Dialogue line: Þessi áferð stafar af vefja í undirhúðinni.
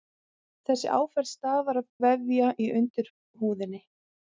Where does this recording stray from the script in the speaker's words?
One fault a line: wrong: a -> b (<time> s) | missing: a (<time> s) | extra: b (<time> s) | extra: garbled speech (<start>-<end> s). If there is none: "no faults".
no faults